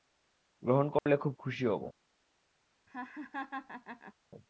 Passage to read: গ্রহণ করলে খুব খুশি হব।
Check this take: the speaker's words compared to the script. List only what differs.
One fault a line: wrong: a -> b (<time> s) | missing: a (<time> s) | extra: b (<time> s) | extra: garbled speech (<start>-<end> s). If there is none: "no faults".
no faults